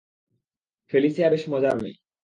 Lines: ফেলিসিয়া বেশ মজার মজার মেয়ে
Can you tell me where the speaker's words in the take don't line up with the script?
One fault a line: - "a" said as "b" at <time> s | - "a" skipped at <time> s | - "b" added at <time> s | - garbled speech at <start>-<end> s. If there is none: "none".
- "মজার" skipped at 1.7 s